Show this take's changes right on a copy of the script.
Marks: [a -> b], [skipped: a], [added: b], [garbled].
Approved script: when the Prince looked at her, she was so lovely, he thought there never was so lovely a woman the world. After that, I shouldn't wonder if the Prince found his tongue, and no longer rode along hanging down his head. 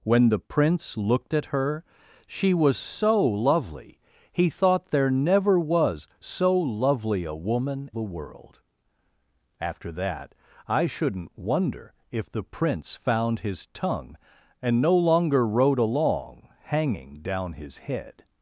when the Prince looked at her, she was so lovely, he thought there never was so lovely a woman the world. After that, I shouldn't wonder if the Prince found his tongue, and no longer rode along hanging down his head.